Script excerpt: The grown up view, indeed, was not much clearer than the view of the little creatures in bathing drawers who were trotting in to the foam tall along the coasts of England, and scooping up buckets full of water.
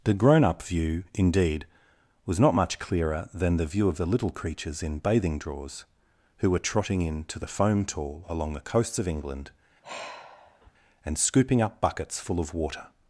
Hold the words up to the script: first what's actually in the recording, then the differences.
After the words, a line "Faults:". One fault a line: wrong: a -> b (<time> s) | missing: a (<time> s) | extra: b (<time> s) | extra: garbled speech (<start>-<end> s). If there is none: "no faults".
The grown up view, indeed, was not much clearer than the view of the little creatures in bathing drawers who were trotting in to the foam tall along the coasts of England, and scooping up buckets full of water.
Faults:
no faults